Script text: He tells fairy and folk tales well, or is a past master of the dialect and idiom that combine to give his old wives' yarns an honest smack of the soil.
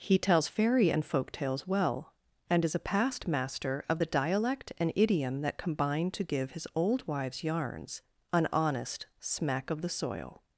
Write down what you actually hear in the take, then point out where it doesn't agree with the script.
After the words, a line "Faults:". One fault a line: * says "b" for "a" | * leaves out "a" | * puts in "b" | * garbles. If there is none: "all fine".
He tells fairy and folk tales well, and is a past master of the dialect and idiom that combine to give his old wives' yarns an honest smack of the soil.
Faults:
* says "and" for "or"